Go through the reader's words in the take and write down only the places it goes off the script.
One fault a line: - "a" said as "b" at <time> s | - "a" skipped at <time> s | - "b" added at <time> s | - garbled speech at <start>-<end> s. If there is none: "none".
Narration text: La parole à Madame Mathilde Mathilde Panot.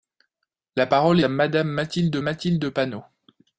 none